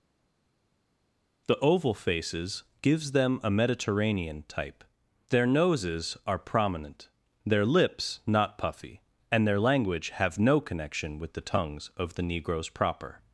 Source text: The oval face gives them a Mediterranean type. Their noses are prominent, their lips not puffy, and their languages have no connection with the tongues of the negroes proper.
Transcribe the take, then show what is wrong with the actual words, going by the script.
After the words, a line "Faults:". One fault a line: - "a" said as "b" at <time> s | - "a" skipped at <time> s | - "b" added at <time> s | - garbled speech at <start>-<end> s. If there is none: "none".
The oval faces gives them a Mediterranean type. Their noses are prominent, their lips not puffy, and their language have no connection with the tongues of the negroes proper.
Faults:
- "face" said as "faces" at 1.9 s
- "languages" said as "language" at 9.6 s